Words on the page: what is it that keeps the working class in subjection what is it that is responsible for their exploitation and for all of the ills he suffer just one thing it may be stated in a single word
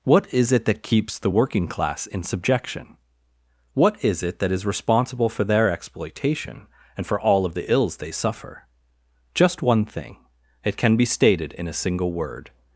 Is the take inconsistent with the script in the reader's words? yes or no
yes